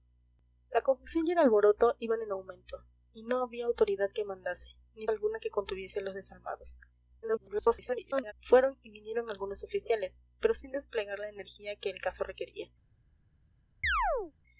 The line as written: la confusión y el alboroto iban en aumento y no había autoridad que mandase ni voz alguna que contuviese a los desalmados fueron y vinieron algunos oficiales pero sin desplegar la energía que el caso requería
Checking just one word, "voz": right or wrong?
wrong